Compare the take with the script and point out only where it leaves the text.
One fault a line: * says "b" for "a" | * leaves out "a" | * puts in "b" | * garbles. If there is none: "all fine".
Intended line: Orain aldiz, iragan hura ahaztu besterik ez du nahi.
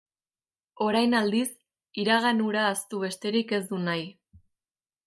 all fine